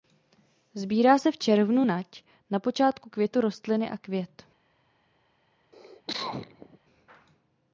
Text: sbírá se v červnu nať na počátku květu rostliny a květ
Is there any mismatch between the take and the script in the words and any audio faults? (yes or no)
yes